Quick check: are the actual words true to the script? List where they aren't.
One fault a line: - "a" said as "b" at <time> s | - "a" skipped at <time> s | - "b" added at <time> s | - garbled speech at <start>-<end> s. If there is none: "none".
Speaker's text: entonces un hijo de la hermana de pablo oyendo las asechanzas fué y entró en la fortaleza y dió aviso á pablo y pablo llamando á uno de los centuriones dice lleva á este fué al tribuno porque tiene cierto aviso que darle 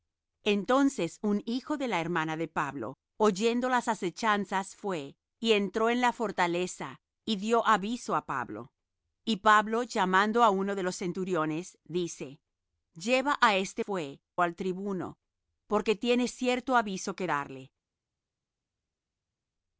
none